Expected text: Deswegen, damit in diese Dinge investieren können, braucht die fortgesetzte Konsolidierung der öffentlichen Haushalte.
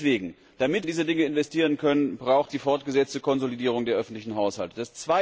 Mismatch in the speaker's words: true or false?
false